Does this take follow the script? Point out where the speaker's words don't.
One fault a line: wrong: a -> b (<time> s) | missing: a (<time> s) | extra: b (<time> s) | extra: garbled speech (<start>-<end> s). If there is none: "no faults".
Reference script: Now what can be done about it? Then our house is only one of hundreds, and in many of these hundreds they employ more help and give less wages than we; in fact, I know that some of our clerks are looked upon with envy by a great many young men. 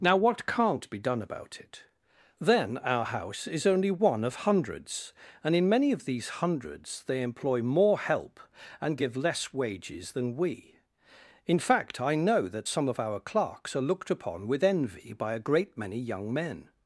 wrong: can -> can't (0.5 s)